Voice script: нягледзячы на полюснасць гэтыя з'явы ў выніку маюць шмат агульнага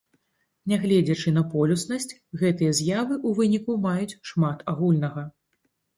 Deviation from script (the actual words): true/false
false